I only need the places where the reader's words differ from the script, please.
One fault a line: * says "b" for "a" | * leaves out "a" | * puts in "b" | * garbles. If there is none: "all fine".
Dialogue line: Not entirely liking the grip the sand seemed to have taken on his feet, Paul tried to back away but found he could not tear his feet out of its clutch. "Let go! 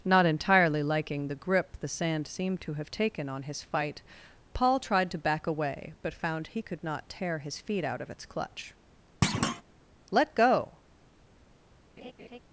* says "fight" for "feet"